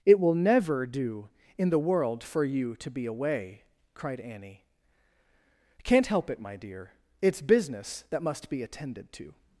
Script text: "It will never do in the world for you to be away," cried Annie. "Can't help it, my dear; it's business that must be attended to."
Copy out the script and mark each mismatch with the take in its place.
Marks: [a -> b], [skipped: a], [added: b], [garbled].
"It will never do in the world for you to be away," cried Annie. "Can't help it, my dear; it's business that must be attended to."